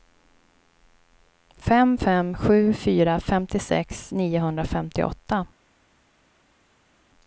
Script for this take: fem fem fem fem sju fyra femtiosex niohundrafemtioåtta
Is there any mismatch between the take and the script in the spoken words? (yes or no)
yes